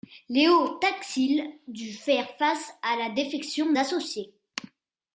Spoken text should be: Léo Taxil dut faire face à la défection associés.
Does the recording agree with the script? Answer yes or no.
yes